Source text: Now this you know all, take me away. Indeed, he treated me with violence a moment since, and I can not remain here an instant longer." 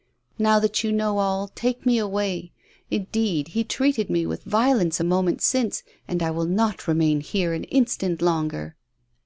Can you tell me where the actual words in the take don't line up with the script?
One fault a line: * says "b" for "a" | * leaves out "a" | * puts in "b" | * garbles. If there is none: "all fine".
* says "that" for "this"
* says "will" for "can"